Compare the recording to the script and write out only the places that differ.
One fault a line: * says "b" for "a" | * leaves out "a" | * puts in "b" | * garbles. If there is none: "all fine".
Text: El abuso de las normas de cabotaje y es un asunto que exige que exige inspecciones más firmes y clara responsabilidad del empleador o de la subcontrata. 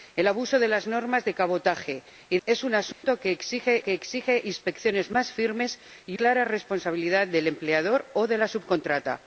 all fine